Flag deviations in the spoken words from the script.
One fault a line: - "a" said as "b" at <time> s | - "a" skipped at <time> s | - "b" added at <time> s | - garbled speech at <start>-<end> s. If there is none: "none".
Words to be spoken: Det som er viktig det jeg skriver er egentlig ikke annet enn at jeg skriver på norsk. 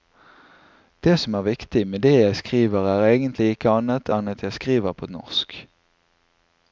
- "med" added at 1.9 s